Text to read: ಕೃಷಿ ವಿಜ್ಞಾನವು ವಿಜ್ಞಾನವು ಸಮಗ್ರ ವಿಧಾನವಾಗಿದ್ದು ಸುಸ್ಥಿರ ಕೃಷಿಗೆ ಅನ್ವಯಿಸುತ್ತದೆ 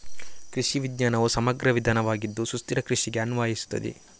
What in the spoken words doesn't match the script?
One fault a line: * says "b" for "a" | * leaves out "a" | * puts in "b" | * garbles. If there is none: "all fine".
* leaves out "ವಿಜ್ಞಾನವು"